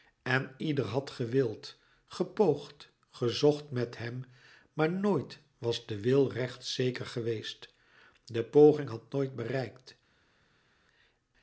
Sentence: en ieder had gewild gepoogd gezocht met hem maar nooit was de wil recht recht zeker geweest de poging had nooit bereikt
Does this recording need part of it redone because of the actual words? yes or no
yes